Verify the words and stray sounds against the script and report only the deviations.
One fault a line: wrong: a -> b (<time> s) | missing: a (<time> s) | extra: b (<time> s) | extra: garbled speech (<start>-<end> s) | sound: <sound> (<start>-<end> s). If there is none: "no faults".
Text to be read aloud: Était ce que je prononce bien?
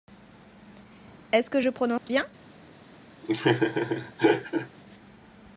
wrong: Était -> Est (1.3 s)
sound: dropout (2.0-2.1 s)
sound: laugh (3.2-4.7 s)